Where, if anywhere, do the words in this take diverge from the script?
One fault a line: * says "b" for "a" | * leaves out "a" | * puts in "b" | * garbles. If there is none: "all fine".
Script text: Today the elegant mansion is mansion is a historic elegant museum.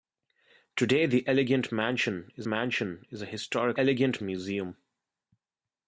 all fine